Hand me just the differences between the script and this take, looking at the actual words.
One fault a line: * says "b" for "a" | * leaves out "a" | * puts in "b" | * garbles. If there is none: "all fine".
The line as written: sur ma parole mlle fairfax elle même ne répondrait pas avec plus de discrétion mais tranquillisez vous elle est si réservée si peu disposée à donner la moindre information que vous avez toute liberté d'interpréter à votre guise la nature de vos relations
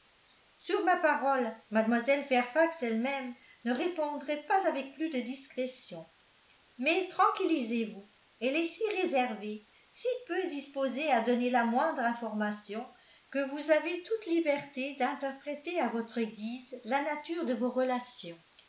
all fine